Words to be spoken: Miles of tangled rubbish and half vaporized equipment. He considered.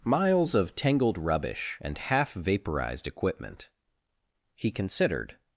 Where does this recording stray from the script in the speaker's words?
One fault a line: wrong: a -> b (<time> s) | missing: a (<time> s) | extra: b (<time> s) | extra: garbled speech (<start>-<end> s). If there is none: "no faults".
no faults